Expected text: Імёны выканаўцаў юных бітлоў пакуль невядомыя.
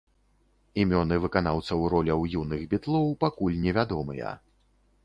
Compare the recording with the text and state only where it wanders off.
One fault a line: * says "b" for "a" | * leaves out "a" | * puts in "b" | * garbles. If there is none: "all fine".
* puts in "роляў"